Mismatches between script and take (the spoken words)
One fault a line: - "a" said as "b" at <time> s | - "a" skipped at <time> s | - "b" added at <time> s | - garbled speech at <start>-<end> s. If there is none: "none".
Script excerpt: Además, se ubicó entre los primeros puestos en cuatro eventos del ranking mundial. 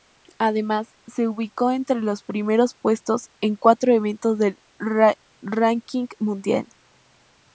none